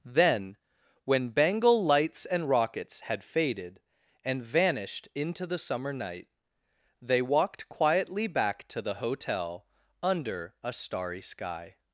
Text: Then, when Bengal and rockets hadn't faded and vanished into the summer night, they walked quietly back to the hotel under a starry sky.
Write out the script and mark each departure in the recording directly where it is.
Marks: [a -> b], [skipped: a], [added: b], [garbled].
Then, when Bengal [added: lights] and rockets [hadn't -> had] faded and vanished into the summer night, they walked quietly back to the hotel under a starry sky.